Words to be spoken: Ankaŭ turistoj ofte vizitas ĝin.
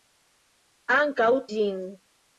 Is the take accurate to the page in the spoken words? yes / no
no